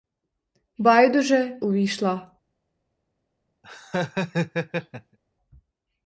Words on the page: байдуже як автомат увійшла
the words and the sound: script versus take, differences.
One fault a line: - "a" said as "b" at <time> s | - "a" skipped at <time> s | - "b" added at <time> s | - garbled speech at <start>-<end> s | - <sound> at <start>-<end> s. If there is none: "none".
- "як автомат" skipped at 1.6 s
- laugh at 3.6-5.2 s